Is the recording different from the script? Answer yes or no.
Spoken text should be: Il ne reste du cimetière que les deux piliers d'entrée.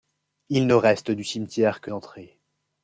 yes